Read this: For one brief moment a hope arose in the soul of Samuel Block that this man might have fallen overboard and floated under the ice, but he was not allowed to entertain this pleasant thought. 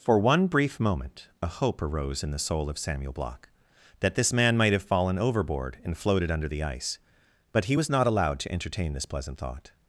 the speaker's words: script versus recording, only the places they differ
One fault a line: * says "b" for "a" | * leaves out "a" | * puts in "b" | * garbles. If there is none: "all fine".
all fine